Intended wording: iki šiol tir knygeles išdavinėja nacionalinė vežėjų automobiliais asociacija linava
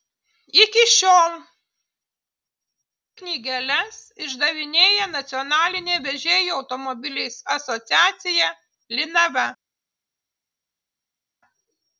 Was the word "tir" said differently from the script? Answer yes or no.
yes